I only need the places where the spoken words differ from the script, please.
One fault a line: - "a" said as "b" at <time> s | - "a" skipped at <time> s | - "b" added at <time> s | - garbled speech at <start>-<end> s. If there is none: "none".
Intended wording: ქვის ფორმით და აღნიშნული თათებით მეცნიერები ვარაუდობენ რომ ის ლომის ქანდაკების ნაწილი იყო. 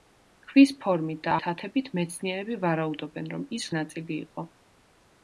- "აღნიშნული" skipped at 1.3 s
- "ლომის ქანდაკების" skipped at 3.7 s